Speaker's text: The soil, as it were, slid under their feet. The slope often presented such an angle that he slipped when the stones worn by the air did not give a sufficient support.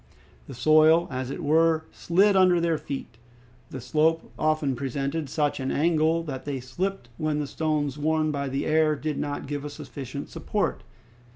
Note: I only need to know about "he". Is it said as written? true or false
false